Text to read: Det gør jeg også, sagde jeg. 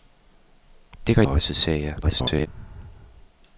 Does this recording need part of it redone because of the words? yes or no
yes